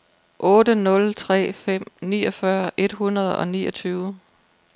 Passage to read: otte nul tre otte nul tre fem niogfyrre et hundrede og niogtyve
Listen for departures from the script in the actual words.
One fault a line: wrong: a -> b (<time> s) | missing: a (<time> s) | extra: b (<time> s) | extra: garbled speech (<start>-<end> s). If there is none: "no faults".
missing: otte nul tre (1.5 s)